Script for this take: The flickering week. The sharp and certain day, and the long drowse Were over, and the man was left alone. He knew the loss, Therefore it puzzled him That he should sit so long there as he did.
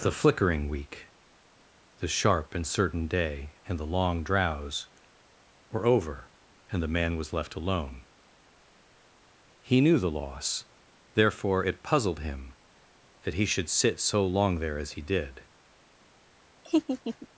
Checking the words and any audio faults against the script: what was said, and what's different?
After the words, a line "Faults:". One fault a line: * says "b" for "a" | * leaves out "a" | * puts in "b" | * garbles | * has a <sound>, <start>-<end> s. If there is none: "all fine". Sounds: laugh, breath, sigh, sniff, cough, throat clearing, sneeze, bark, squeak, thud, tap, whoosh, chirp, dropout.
The flickering week. The sharp and certain day, and the long drowse Were over, and the man was left alone. He knew the loss, Therefore it puzzled him That he should sit so long there as he did.
Faults:
* has a laugh, 16.6-17.3 s